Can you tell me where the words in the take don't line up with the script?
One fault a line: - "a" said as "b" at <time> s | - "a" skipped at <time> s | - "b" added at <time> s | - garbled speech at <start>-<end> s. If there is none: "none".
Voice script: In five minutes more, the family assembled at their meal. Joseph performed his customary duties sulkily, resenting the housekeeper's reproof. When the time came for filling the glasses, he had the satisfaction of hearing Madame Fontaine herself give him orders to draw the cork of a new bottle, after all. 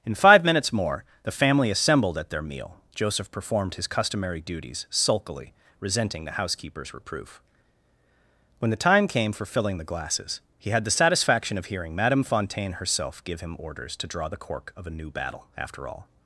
- "bottle" said as "battle" at 15.1 s